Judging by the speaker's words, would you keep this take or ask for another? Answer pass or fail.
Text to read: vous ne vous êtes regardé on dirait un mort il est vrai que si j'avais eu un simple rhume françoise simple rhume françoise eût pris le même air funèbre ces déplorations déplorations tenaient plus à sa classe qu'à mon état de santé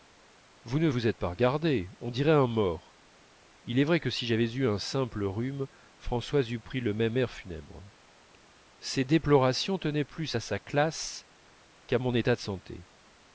fail